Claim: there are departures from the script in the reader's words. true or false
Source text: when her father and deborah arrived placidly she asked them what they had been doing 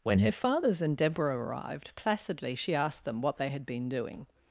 true